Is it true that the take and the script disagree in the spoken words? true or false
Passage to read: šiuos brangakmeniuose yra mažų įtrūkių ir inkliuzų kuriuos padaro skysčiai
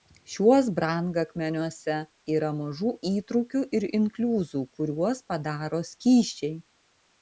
false